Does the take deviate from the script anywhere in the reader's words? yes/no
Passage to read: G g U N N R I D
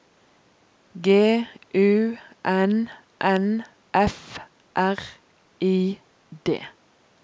yes